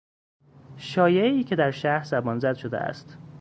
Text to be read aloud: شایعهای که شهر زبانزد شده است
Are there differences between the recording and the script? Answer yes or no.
yes